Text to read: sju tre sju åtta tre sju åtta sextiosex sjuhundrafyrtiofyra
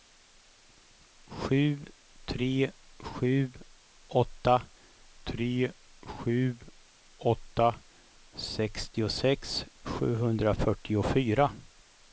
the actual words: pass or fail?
pass